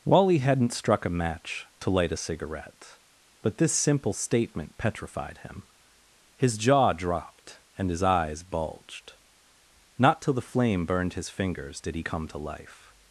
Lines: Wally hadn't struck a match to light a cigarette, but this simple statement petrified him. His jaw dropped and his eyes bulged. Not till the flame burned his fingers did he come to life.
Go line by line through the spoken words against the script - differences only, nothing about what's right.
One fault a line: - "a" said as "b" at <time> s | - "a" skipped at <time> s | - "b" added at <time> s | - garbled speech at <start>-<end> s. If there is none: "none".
none